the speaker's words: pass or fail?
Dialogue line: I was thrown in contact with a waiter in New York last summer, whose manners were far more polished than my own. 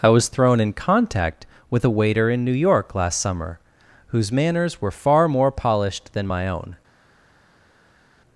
pass